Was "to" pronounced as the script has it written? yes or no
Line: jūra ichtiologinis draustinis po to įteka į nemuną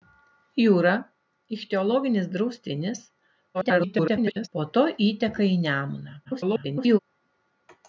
yes